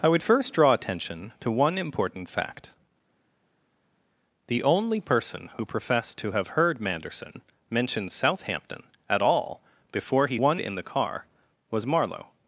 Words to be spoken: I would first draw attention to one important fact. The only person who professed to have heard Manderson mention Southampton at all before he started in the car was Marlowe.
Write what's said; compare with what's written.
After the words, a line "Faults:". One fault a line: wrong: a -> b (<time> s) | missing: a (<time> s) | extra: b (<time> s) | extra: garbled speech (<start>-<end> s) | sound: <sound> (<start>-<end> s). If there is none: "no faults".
I would first draw attention to one important fact. The only person who professed to have heard Manderson mention Southampton at all before he one in the car was Marlowe.
Faults:
wrong: started -> one (10.3 s)